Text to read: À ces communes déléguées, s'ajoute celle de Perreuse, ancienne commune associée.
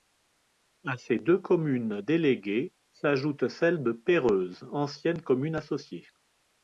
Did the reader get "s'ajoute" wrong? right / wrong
right